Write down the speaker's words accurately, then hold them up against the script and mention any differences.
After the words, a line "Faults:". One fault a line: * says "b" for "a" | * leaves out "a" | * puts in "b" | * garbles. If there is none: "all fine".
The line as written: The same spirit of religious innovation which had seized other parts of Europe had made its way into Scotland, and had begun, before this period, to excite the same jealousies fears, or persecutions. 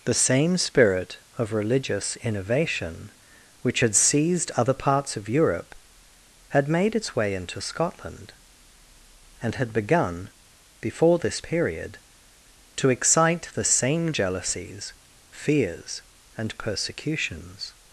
The same spirit of religious innovation which had seized other parts of Europe had made its way into Scotland, and had begun, before this period, to excite the same jealousies fears, and persecutions.
Faults:
* says "and" for "or"